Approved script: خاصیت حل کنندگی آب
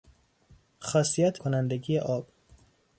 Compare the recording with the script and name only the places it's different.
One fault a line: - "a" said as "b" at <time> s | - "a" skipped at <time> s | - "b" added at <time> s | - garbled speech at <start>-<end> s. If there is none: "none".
- "حل" skipped at 1.4 s